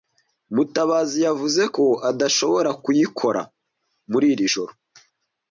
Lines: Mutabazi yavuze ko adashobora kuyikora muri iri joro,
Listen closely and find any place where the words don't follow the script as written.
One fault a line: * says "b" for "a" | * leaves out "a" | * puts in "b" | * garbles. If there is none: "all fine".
all fine